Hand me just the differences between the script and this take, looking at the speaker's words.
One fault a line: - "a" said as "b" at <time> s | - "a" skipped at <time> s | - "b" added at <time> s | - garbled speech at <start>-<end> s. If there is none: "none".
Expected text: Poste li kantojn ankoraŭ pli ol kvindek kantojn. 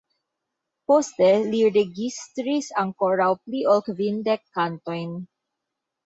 - "kantojn" said as "registris" at 1.8 s